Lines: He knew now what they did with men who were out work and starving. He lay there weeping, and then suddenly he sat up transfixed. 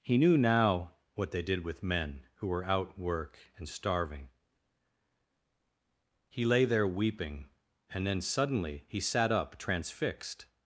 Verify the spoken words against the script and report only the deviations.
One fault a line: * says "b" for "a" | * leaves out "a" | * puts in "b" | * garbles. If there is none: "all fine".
all fine